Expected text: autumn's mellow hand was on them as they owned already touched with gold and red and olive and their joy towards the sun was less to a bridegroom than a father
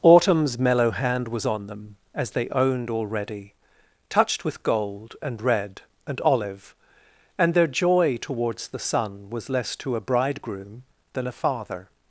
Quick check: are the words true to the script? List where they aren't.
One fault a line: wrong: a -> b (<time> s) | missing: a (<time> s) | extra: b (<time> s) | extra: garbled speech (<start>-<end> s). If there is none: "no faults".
no faults